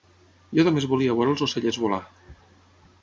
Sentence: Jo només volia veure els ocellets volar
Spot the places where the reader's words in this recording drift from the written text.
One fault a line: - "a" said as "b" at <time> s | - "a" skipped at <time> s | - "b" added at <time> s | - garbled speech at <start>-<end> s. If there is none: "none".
none